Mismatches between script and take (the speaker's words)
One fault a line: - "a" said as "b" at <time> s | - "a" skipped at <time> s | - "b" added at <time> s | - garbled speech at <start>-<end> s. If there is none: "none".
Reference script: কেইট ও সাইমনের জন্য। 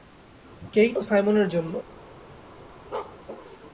none